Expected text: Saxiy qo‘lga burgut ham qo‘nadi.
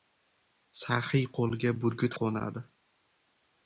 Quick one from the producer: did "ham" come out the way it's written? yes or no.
no